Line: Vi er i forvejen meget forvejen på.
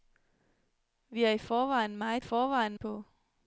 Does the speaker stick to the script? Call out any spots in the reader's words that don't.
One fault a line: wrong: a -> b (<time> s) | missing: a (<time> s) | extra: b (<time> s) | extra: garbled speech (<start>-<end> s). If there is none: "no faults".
no faults